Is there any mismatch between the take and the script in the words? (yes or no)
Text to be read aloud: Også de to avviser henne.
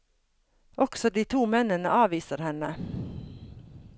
yes